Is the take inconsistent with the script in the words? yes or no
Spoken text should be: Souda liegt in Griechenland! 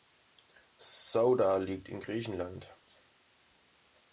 no